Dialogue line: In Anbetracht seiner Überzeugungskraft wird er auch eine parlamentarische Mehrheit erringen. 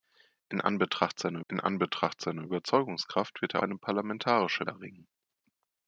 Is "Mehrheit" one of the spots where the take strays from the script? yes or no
yes